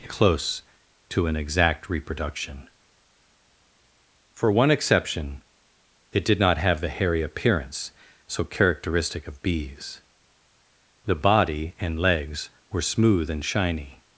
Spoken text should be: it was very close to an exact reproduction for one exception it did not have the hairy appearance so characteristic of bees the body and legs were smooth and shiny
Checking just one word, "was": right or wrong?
wrong